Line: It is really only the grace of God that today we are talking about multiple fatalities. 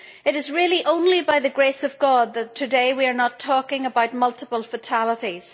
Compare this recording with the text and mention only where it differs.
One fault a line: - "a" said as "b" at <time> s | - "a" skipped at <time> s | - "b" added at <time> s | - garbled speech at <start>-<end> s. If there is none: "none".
- "by" added at 1.2 s
- "not" added at 3.1 s